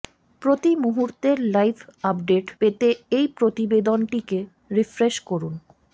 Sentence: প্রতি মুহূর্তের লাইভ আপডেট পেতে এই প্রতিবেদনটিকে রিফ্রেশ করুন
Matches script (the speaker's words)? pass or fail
pass